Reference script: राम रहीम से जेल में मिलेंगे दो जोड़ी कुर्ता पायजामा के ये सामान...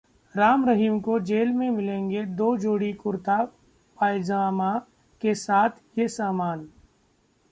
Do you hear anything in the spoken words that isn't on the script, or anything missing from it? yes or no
yes